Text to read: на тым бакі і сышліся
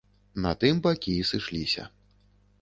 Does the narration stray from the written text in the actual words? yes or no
no